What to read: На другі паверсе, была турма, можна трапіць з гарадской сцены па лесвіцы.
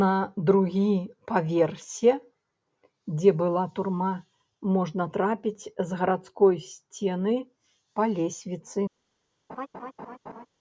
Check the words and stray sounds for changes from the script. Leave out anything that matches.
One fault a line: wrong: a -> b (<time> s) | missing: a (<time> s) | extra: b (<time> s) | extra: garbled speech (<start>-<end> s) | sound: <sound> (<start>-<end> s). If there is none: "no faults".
extra: дзе (3.2 s)
sound: laugh (9.5-10.5 s)